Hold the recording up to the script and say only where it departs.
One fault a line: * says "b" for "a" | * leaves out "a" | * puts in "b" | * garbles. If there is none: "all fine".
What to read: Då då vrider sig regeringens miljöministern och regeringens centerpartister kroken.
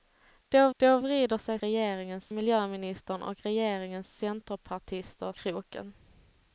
all fine